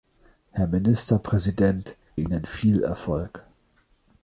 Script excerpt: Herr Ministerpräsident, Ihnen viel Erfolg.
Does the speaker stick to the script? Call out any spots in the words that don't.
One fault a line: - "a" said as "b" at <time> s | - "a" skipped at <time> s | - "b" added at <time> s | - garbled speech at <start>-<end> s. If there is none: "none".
none